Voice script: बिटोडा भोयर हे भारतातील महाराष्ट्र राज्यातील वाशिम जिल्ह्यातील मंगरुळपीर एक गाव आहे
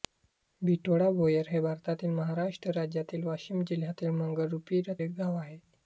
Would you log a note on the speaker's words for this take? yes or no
no